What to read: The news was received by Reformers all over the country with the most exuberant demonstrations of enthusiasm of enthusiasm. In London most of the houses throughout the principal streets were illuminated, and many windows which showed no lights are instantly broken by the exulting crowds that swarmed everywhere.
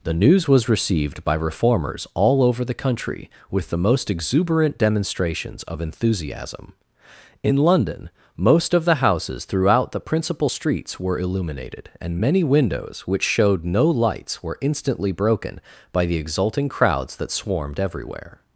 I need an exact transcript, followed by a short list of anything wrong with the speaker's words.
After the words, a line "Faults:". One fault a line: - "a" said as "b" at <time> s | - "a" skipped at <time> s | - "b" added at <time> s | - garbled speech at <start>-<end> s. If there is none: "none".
The news was received by Reformers all over the country with the most exuberant demonstrations of enthusiasm. In London most of the houses throughout the principal streets were illuminated, and many windows which showed no lights were instantly broken by the exulting crowds that swarmed everywhere.
Faults:
- "of enthusiasm" skipped at 6.7 s
- "are" said as "were" at 14.4 s